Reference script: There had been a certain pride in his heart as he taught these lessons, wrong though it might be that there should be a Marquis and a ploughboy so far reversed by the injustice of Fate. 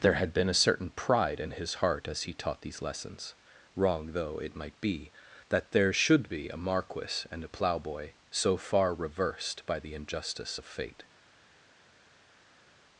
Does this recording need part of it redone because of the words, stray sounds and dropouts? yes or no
no